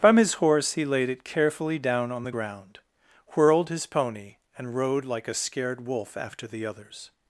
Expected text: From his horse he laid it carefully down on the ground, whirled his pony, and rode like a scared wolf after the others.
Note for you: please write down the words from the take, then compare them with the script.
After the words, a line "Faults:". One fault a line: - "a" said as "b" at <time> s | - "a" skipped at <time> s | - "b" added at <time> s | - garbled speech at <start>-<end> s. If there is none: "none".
From his horse he laid it carefully down on the ground, whirled his pony, and rode like a scared wolf after the others.
Faults:
none